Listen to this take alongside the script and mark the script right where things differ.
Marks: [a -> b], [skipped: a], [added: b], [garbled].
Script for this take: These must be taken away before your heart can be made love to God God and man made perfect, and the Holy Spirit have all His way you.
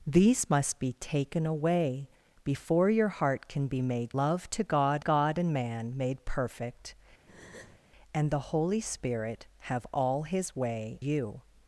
These must be taken away before your heart can be made love to God God and man made perfect, and the Holy Spirit have all His way you.